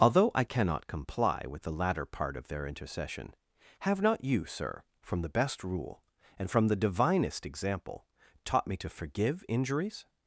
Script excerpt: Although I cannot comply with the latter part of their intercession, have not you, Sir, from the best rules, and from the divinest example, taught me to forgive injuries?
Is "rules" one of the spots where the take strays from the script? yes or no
yes